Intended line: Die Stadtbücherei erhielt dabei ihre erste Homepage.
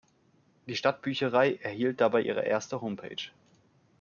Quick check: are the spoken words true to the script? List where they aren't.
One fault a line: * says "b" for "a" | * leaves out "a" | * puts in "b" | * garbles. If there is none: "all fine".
all fine